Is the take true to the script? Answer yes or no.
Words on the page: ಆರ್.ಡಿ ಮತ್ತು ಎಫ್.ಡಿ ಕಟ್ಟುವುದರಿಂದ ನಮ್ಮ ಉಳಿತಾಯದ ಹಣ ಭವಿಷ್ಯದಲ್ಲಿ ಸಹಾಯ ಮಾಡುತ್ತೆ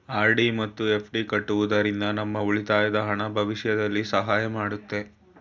yes